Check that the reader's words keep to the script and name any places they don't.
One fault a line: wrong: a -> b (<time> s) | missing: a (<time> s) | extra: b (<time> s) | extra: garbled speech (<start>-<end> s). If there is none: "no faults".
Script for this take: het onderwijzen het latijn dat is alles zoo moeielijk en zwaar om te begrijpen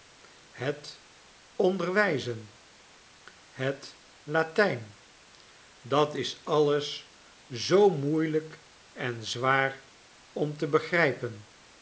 no faults